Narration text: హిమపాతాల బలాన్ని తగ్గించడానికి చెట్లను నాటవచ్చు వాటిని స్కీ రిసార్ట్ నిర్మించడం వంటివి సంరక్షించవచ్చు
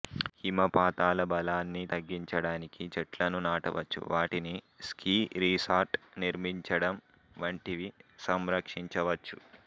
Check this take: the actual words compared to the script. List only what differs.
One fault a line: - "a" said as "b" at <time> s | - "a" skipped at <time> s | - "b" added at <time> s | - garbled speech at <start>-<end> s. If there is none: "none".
none